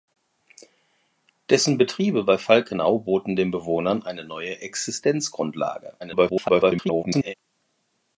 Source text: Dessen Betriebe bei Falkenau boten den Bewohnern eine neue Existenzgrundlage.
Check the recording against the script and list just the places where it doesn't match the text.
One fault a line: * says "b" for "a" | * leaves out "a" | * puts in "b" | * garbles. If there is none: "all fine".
* garbles